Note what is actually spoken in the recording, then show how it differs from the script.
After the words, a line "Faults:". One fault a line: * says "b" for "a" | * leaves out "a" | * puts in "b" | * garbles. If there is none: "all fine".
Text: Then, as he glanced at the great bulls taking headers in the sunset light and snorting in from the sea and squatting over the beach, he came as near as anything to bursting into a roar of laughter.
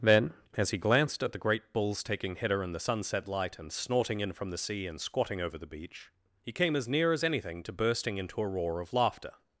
Then, as he glanced at the great bulls taking header in the sunset light and snorting in from the sea and squatting over the beach, he came as near as anything to bursting into a roar of laughter.
Faults:
* says "header" for "headers"